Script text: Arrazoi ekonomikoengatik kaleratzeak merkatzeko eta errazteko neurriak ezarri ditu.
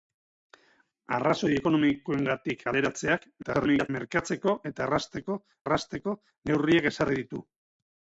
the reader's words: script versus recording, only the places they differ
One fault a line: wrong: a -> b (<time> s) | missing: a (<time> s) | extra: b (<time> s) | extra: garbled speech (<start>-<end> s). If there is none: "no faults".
extra: garbled speech (3.4-3.9 s)
extra: errazteko (5.7 s)